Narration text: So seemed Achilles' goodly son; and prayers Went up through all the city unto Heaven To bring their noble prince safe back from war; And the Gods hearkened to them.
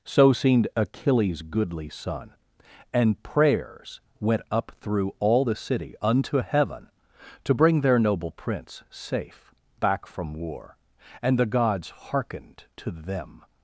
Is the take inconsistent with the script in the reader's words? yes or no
no